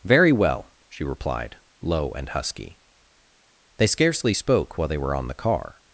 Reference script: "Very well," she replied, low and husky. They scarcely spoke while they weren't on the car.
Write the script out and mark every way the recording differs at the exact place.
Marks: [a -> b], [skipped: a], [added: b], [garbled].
"Very well," she replied, low and husky. They scarcely spoke while they [weren't -> were] on the car.